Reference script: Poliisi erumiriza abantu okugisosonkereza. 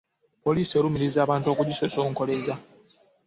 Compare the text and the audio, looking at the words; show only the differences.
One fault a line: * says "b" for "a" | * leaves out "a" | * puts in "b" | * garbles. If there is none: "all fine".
all fine